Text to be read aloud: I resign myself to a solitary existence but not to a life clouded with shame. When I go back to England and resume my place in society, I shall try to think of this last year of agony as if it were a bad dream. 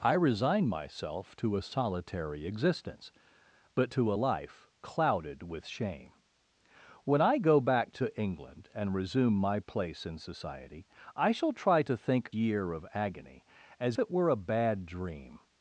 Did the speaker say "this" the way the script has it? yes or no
no